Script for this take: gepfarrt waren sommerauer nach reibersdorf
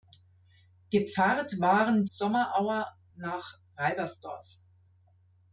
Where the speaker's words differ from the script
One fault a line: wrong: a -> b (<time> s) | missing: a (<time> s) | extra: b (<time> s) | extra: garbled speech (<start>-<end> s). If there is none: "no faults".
no faults